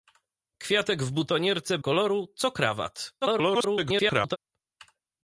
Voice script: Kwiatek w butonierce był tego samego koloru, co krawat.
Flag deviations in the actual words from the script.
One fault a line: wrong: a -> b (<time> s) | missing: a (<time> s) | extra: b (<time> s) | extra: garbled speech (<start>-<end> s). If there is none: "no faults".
missing: był tego samego (1.8 s)
extra: garbled speech (3.2-4.4 s)